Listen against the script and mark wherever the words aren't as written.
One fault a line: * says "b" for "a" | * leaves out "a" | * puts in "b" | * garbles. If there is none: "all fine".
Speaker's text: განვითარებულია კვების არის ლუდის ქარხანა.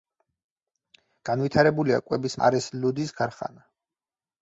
all fine